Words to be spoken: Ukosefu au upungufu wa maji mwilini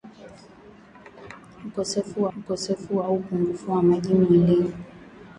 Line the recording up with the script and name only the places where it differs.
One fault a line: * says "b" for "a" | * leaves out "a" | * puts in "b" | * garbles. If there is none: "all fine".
* puts in "ukosefu"